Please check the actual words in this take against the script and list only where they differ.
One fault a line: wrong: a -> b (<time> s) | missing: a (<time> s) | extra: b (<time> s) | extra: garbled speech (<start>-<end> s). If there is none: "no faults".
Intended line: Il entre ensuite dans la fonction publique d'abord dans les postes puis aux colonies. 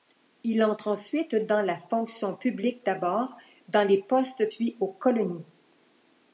no faults